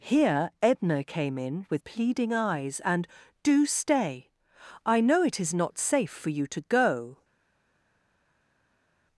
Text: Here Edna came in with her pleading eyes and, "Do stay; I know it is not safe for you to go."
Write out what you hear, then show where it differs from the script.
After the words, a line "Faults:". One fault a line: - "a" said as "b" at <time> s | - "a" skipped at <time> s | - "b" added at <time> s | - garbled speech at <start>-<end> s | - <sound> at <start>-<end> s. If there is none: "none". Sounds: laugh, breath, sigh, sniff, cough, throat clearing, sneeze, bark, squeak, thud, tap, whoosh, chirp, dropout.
Here Edna came in with pleading eyes and, "Do stay; I know it is not safe for you to go."
Faults:
- "her" skipped at 1.8 s